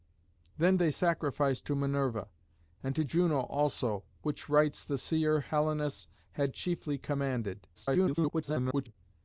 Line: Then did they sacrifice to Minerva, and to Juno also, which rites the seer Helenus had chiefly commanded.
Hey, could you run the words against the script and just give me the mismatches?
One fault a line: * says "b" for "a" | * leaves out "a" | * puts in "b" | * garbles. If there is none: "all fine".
* leaves out "did"
* garbles